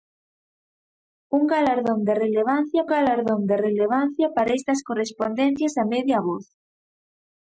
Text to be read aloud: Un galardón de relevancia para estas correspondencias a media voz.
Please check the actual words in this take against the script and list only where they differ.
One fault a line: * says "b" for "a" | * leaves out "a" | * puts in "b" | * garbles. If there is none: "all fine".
* puts in "galardón de relevancia"